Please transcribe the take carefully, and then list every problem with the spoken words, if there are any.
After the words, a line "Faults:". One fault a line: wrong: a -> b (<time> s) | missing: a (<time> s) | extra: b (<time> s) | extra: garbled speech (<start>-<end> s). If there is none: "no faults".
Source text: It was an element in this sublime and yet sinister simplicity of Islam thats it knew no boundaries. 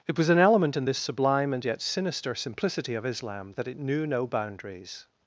It was an element in this sublime and yet sinister simplicity of Islam that it knew no boundaries.
Faults:
wrong: thats -> that (3.6 s)